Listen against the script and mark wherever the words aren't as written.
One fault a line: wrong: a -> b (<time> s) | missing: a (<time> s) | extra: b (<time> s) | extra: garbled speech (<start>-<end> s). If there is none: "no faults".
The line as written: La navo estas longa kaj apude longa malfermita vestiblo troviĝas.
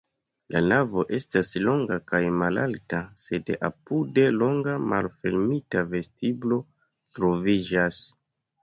extra: malalta sed (2.4 s)